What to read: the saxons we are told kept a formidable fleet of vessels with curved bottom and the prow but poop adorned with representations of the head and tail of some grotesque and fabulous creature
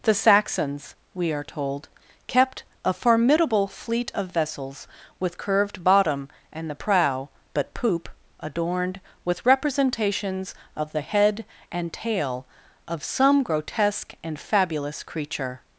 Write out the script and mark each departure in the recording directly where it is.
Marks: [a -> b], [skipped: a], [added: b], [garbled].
the saxons we are told kept a formidable fleet of vessels with curved bottom and the prow but poop adorned with representations of the head and tail of some grotesque and fabulous creature